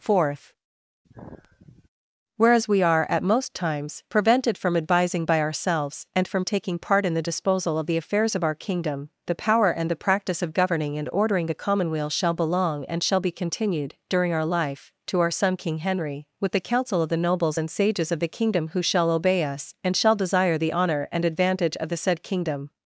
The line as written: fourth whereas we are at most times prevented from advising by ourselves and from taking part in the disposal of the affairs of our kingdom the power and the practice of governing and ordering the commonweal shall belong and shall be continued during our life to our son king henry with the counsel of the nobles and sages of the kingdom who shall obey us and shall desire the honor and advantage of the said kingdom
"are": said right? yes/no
yes